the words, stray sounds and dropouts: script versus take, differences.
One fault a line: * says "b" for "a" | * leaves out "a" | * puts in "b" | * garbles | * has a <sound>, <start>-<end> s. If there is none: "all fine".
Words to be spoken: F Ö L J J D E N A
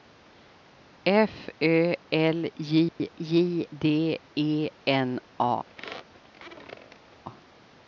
* has a dropout, 2.9-3.0 s
* has a squeak, 5.7-7.2 s